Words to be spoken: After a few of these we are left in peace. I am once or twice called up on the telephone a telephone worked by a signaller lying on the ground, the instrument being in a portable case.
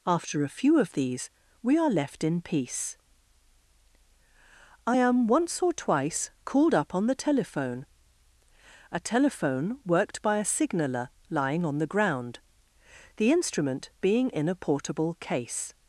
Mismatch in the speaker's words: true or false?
false